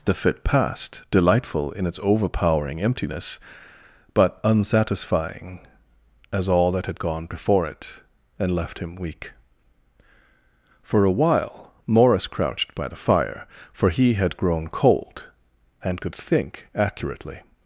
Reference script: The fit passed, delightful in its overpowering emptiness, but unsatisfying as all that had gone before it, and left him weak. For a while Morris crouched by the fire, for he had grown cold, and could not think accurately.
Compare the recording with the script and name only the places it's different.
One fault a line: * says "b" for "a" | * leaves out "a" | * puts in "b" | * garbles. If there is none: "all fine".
* leaves out "not"